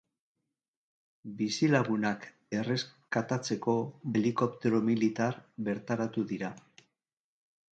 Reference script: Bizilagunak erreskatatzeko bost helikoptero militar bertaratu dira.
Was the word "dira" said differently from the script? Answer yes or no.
no